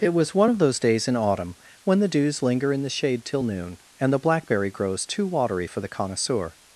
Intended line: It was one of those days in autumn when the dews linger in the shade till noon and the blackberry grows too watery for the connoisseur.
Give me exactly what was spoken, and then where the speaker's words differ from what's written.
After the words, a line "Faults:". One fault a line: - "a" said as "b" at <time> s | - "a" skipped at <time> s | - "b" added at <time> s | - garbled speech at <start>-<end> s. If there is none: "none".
It was one of those days in autumn when the dews linger in the shade till noon and the blackberry grows too watery for the connoisseur.
Faults:
none